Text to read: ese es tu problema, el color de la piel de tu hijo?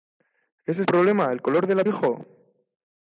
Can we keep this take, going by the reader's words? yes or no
no